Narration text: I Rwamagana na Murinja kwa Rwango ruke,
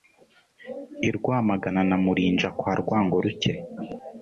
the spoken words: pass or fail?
pass